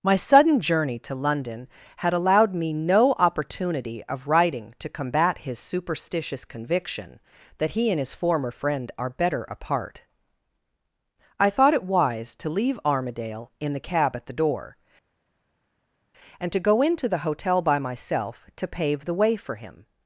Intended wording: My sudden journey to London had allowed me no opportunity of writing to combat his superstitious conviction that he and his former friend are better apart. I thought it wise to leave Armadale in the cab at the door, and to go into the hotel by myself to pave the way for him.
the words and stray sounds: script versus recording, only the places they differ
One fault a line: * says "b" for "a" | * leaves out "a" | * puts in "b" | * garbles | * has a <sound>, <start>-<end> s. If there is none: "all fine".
all fine